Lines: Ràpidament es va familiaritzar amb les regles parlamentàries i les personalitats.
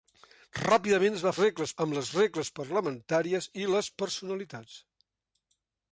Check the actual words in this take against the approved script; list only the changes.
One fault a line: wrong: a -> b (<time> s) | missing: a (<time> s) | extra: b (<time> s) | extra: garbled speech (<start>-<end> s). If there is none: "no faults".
wrong: familiaritzar -> regles (1.4 s)